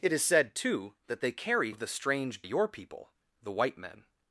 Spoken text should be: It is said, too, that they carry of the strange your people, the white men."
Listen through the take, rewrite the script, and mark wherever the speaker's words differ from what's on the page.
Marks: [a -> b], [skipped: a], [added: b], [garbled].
It is said, too, that they carry of the strange your people, the white men."